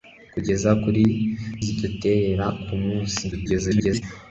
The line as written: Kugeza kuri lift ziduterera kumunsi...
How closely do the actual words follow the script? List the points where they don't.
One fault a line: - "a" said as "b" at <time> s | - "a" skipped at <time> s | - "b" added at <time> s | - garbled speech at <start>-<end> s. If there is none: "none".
- "lift" skipped at 1.0 s
- garbled speech at 3.3-4.0 s